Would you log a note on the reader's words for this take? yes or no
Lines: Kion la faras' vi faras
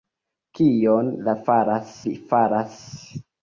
no